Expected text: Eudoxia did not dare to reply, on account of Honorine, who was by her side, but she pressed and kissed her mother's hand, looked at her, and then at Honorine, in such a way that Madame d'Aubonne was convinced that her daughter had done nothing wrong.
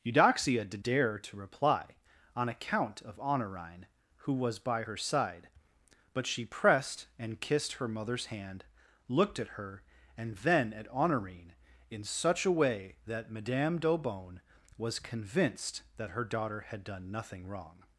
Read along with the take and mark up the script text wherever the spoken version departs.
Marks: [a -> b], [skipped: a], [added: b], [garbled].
Eudoxia did [skipped: not] dare to reply, on account of Honorine, who was by her side, but she pressed and kissed her mother's hand, looked at her, and then at Honorine, in such a way that Madame d'Aubonne was convinced that her daughter had done nothing wrong.